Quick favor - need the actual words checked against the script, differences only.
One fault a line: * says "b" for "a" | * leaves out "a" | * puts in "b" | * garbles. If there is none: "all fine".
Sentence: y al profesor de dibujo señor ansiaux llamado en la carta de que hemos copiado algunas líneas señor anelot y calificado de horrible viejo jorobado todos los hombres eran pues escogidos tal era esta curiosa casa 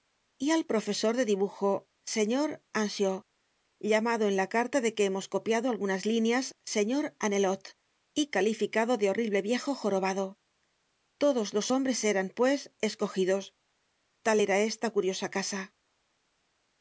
all fine